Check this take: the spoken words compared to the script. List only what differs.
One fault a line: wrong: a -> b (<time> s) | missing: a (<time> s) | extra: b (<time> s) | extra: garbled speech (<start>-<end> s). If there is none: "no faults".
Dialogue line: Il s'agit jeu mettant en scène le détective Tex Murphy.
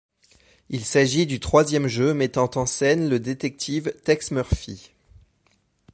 extra: du troisième (1.3 s)